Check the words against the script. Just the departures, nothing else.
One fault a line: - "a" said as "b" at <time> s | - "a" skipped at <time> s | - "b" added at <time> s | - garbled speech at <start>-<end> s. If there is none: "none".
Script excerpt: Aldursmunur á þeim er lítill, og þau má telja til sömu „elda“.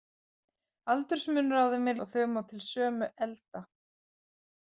- "lítill" skipped at 2.0 s
- "telja" skipped at 2.4 s